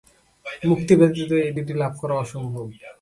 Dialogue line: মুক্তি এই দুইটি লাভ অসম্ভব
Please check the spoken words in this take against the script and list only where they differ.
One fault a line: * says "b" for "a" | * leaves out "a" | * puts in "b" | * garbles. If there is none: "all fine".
* puts in "ব্যতীত"
* puts in "করা"